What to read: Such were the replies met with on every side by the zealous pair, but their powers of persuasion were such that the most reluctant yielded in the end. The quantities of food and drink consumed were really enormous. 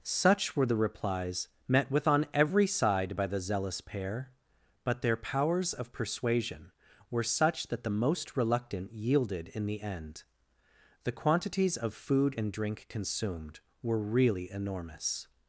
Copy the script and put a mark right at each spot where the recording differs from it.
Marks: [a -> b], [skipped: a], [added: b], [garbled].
Such were the replies met with on every side by the zealous pair, but their powers of persuasion were such that the most reluctant yielded in the end. The quantities of food and drink consumed were really enormous.